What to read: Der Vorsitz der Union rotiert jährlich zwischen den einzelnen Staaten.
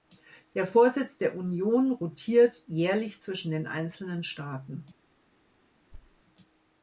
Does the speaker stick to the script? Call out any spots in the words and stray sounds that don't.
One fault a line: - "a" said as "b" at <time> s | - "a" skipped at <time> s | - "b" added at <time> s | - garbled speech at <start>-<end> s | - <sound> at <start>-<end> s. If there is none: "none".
- thud at 5.9-6.2 s